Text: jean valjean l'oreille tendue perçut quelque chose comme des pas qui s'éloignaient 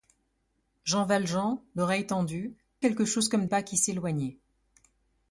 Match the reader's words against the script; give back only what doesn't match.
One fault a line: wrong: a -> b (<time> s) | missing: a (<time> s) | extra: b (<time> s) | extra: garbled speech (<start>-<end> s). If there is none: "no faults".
missing: perçut (2.5 s)
missing: des (3.4 s)